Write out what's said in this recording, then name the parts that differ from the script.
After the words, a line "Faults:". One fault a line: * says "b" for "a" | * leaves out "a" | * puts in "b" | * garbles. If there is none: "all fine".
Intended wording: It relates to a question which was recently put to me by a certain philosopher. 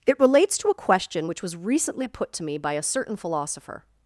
It relates to a question which was recently put to me by a certain philosopher.
Faults:
all fine